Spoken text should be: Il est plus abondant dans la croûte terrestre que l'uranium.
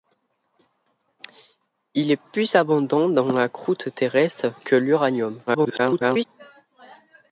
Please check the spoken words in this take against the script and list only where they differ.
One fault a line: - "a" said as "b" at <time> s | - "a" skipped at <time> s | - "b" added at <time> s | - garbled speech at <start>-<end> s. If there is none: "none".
- garbled speech at 5.5-6.3 s